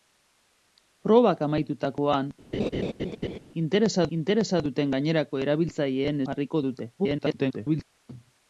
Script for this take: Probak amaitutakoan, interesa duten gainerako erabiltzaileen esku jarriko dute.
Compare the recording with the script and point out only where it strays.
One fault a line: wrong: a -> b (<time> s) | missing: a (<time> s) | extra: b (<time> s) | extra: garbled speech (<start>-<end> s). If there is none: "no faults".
extra: interesa (4.2 s)
missing: esku (6.2 s)
extra: garbled speech (7.0-7.8 s)